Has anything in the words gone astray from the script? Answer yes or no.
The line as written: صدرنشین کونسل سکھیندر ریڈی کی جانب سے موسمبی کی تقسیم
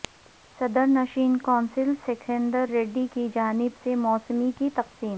no